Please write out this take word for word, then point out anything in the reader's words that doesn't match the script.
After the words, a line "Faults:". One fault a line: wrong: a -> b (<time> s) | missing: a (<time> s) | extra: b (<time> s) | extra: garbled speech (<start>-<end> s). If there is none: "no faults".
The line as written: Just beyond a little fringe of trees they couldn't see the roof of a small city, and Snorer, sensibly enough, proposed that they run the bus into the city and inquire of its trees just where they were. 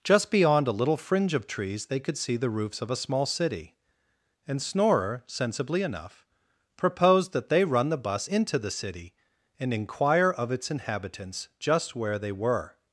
Just beyond a little fringe of trees they could see the roofs of a small city, and Snorer, sensibly enough, proposed that they run the bus into the city and inquire of its inhabitants just where they were.
Faults:
wrong: couldn't -> could (2.0 s)
wrong: roof -> roofs (2.5 s)
wrong: trees -> inhabitants (10.7 s)